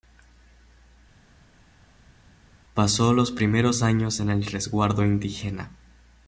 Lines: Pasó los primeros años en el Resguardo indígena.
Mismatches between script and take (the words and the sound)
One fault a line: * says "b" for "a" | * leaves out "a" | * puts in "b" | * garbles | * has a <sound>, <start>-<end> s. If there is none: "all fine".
all fine